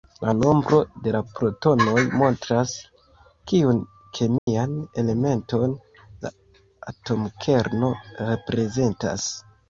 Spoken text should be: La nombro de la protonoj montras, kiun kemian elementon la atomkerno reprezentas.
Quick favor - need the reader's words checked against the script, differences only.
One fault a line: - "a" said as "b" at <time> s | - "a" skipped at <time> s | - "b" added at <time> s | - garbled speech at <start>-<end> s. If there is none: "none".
none